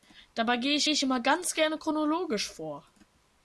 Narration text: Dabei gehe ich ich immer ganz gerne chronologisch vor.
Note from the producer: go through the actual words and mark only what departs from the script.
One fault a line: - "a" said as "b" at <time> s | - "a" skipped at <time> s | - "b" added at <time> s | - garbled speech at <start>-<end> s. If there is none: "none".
none